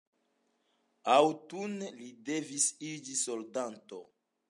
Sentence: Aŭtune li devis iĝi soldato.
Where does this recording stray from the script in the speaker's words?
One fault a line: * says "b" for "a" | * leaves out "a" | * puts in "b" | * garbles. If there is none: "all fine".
all fine